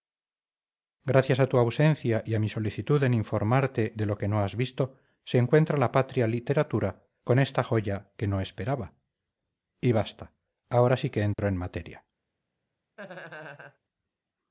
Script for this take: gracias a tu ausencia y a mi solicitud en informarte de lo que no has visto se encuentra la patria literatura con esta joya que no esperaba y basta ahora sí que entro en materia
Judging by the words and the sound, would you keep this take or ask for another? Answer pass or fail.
fail